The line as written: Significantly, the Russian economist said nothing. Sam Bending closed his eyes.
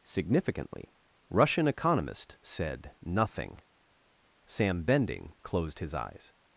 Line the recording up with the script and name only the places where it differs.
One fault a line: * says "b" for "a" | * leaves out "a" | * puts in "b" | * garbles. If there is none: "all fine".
* leaves out "the"